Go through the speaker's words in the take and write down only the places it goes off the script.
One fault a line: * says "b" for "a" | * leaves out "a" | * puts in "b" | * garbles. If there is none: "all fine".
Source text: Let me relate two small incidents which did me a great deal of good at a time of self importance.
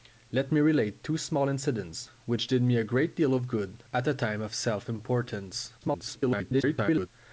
* garbles